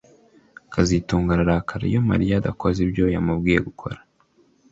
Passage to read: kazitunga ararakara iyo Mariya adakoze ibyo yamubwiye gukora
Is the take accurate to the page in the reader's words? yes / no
yes